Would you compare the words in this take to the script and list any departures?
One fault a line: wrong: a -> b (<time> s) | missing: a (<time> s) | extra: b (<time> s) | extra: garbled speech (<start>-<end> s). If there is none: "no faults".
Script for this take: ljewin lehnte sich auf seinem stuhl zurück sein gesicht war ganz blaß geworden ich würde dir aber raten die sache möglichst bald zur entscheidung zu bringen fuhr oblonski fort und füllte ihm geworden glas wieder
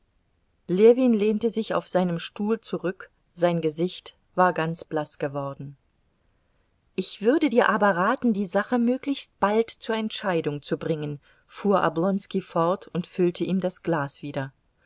wrong: geworden -> das (13.6 s)